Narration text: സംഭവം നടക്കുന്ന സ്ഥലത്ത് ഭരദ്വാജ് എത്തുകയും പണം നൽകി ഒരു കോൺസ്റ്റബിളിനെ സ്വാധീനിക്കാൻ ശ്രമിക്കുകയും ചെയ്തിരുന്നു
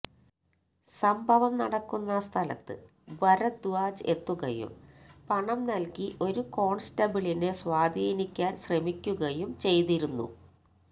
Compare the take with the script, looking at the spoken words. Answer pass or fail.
pass